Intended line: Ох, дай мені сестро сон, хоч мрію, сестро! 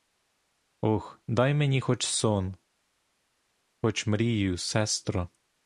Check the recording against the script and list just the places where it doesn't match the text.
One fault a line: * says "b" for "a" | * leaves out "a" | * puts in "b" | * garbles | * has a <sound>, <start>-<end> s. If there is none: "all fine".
* says "хоч" for "сестро"